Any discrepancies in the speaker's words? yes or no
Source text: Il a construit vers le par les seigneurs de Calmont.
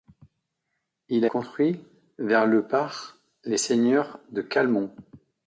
no